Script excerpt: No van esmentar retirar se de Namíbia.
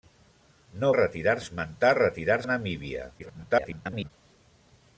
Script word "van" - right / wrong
wrong